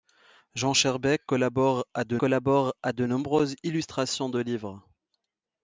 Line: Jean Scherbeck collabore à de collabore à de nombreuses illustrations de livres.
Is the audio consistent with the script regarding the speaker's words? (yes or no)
yes